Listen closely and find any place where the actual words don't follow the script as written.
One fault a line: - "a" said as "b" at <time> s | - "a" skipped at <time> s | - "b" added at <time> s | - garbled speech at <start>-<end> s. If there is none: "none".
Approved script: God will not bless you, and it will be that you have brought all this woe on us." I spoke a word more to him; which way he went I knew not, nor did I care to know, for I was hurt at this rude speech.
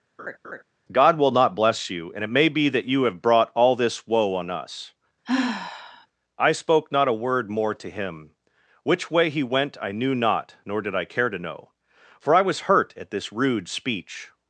- "will" said as "may" at 2.3 s
- "not" added at 6.9 s